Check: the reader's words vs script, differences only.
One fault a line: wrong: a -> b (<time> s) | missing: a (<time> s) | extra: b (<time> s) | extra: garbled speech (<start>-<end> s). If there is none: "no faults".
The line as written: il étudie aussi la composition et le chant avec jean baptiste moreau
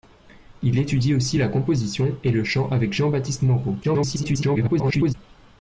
extra: garbled speech (3.8-5.1 s)